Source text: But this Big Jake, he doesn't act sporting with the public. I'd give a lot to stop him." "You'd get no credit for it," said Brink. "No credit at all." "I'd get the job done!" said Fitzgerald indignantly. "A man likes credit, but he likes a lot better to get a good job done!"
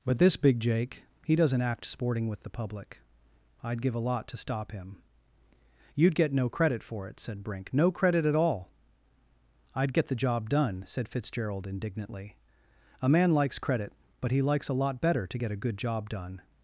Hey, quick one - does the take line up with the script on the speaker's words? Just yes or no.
yes